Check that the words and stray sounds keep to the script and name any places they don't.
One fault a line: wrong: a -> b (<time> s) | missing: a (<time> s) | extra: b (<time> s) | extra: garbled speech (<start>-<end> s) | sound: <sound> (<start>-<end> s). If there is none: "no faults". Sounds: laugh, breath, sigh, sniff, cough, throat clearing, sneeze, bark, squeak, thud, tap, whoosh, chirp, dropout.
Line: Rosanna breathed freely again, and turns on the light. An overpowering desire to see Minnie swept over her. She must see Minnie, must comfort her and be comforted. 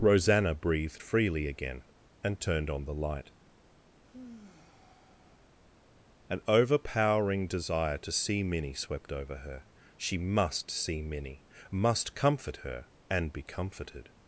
wrong: turns -> turned (2.4 s)
sound: sigh (4.0-5.6 s)